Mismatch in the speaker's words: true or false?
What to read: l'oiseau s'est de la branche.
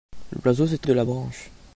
false